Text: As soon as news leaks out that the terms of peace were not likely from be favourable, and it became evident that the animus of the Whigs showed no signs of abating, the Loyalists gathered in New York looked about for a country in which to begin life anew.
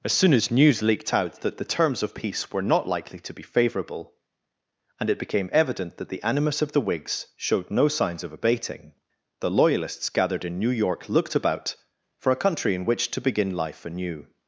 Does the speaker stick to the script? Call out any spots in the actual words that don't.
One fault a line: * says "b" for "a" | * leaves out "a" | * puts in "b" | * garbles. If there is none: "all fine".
* says "leaked" for "leaks"
* says "to" for "from"